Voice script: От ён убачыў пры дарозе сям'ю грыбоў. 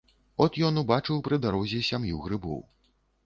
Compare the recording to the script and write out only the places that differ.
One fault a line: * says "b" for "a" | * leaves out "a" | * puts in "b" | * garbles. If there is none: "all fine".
all fine